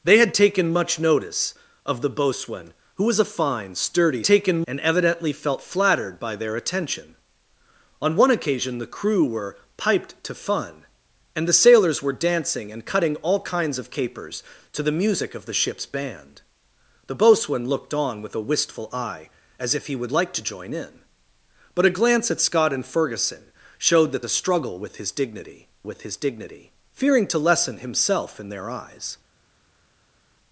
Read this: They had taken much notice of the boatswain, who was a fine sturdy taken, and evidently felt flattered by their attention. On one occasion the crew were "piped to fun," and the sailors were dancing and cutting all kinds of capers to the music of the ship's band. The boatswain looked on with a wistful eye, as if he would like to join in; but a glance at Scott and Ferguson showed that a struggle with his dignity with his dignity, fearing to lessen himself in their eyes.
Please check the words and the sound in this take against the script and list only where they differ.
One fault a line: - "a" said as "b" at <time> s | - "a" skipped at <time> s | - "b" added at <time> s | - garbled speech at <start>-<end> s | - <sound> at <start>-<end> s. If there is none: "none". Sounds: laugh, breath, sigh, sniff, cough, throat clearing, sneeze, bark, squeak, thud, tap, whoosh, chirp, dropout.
none